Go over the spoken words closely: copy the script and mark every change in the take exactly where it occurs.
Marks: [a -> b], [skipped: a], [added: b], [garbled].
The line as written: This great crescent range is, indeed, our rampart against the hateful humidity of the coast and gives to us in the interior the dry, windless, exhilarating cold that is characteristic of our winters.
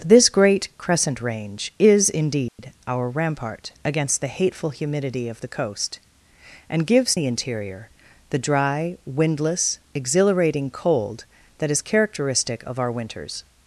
This great crescent range is, indeed, our rampart against the hateful humidity of the coast and gives [skipped: to us in] the interior the dry, windless, exhilarating cold that is characteristic of our winters.